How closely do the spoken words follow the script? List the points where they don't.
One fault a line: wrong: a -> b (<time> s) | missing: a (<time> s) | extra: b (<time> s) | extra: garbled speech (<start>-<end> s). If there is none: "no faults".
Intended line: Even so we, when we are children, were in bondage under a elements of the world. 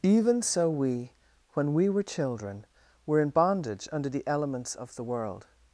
wrong: are -> were (1.9 s)
wrong: a -> the (4.1 s)